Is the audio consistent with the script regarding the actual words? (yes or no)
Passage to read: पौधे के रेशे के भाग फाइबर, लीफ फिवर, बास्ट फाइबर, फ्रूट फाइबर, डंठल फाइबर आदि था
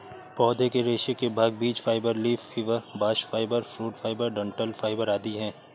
no